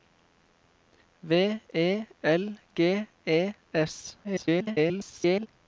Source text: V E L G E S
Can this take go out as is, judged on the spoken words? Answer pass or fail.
fail